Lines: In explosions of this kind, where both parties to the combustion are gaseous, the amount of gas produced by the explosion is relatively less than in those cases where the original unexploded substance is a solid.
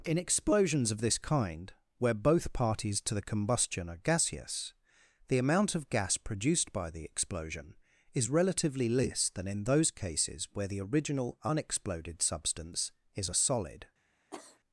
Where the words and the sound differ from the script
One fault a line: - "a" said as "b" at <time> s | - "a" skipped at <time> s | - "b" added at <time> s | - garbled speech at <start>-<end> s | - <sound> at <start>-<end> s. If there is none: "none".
- cough at 14.3-14.6 s